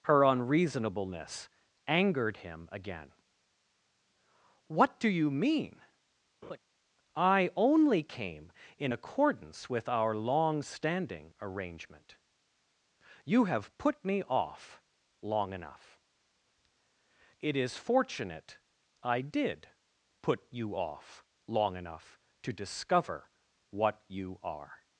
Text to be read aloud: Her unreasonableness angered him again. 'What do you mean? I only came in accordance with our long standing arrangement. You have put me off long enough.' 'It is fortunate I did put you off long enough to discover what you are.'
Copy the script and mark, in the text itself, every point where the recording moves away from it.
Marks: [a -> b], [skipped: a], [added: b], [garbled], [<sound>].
Her unreasonableness angered him again. 'What do you mean? [laugh] I only came in accordance with our long standing arrangement. You have put me off long enough.' 'It is fortunate I did put you off long enough to discover what you are.'